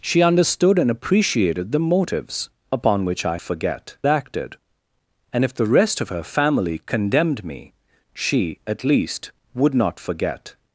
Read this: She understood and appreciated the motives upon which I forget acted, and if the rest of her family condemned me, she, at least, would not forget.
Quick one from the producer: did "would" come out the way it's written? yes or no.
yes